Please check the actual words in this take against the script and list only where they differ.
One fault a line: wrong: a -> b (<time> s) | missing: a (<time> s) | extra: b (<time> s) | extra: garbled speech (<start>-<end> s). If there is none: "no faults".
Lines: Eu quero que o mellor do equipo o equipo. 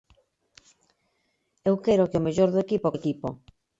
no faults